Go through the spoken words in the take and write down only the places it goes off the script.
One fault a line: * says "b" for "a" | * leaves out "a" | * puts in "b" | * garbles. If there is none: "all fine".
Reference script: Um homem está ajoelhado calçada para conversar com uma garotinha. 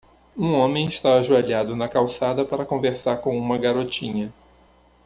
* puts in "na"